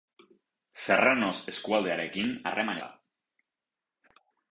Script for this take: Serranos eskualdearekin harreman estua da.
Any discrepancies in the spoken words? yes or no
yes